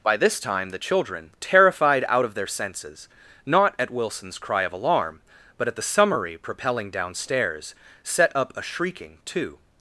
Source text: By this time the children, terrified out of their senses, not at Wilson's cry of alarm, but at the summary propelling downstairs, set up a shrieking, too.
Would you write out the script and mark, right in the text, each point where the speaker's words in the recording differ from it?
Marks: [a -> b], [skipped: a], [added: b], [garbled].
By this time the children, terrified out of their senses, not at Wilson's cry of alarm, but at the summary propelling downstairs, set up a shrieking, too.